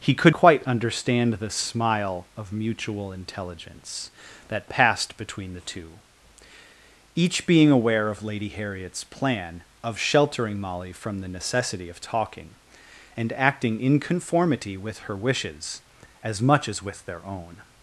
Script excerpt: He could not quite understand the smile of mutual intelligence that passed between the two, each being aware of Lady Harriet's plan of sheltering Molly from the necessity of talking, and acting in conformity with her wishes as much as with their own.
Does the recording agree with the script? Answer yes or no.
no